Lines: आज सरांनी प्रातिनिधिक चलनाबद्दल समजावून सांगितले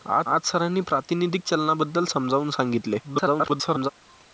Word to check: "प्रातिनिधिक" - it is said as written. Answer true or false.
true